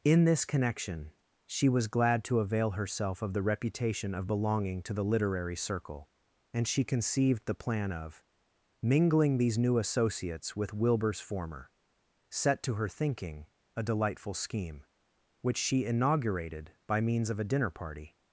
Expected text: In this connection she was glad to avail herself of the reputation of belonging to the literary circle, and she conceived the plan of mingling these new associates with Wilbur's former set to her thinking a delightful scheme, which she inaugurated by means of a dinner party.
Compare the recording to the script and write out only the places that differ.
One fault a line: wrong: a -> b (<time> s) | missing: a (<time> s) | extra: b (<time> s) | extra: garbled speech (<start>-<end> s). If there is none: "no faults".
no faults